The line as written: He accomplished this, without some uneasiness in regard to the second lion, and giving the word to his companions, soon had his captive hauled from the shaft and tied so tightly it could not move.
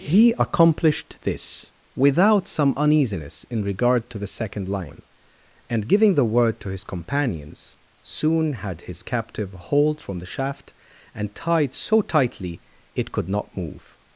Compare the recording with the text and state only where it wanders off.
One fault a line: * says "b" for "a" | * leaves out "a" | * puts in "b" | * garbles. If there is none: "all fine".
all fine